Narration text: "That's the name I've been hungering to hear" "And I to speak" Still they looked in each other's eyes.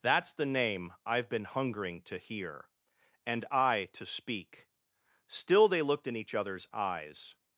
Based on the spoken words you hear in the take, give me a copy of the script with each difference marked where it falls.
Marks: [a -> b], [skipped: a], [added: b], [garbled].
"That's the name I've been hungering to hear" "And I to speak" Still they looked in each other's eyes.